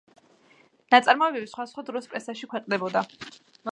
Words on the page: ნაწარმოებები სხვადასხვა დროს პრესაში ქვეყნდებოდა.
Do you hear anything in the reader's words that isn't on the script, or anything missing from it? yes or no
no